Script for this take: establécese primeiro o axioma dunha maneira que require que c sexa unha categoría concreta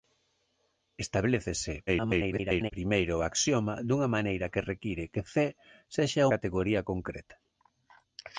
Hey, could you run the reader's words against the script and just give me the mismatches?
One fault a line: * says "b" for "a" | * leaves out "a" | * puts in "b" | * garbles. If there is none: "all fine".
* garbles
* leaves out "unha"